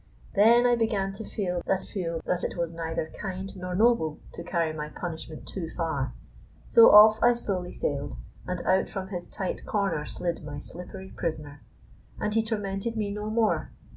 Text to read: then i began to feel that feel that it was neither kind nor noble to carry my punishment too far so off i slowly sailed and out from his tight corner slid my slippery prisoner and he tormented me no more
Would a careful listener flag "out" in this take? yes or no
no